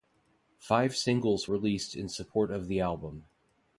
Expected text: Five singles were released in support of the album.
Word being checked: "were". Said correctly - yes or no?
no